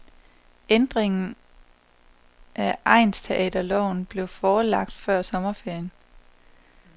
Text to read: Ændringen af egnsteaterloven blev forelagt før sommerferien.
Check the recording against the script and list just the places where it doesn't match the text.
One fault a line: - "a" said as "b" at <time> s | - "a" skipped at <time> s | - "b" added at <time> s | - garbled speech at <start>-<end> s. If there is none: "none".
none